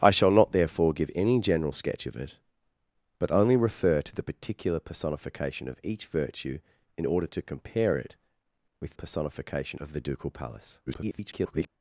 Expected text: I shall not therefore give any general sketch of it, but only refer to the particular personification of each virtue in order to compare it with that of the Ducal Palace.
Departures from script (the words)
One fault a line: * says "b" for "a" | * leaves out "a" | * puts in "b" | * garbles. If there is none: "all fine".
* says "personification" for "that"
* garbles